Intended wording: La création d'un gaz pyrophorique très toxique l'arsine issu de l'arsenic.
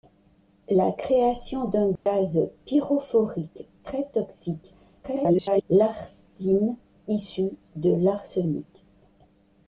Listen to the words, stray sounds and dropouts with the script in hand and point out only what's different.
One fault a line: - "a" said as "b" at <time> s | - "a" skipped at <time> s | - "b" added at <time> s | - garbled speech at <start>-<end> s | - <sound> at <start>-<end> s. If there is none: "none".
- dropout at 2.0-2.1 s
- garbled speech at 5.0-5.6 s